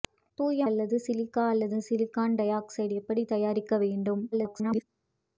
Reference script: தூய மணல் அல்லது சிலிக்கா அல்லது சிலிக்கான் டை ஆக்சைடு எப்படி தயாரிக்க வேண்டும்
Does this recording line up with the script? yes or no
no